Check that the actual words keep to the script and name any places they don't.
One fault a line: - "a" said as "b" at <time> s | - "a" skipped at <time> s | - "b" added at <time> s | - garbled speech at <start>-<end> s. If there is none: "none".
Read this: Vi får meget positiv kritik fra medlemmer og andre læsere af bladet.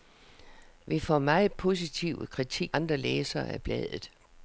- "fra medlemmer og" skipped at 2.8 s